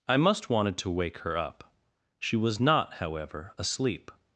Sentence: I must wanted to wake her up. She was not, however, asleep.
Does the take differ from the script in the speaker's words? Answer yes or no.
no